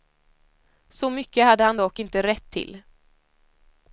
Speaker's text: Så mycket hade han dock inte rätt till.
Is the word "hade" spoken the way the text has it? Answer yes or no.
yes